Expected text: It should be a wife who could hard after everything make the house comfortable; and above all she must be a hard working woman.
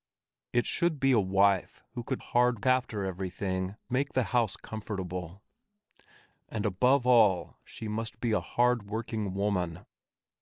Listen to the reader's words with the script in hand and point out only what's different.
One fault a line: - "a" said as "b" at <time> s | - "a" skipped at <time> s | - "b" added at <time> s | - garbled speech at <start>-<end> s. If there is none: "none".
none